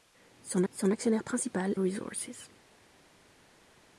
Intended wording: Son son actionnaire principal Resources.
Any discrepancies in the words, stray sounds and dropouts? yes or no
no